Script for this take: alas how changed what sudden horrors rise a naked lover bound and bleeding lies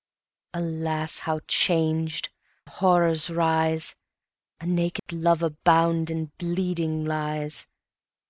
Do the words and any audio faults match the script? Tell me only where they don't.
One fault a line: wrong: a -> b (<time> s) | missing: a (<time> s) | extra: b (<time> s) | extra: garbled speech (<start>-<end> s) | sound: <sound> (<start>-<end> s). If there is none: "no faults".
missing: what sudden (2.3 s)
sound: dropout (5.0-5.1 s)